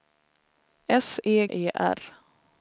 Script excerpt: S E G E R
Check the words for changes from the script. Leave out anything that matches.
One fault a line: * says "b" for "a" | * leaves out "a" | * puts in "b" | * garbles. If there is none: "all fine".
* leaves out "G"